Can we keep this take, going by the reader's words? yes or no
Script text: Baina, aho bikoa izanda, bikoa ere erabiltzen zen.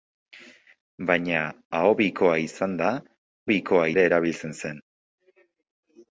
yes